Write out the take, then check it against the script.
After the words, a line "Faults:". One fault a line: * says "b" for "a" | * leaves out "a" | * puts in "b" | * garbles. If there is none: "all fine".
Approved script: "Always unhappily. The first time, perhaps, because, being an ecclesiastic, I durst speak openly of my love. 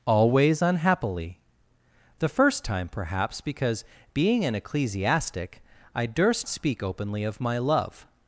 "Always unhappily. The first time, perhaps, because, being an ecclesiastic, I durst speak openly of my love.
Faults:
all fine